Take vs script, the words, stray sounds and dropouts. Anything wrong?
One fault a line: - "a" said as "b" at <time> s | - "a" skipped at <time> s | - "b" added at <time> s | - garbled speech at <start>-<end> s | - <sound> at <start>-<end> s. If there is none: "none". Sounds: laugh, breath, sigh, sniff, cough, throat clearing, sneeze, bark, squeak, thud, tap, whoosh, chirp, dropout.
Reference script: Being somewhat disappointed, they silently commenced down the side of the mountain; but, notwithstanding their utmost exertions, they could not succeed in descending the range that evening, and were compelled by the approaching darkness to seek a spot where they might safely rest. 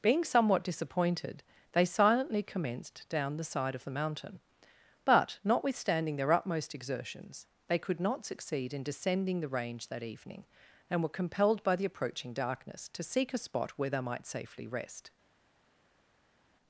none